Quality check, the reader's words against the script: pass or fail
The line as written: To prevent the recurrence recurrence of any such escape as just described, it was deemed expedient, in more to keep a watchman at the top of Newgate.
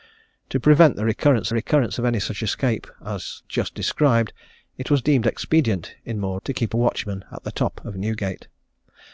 pass